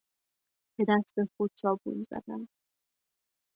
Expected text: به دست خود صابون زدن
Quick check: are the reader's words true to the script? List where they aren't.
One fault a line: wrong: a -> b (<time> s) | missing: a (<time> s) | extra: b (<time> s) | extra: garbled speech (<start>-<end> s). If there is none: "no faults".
no faults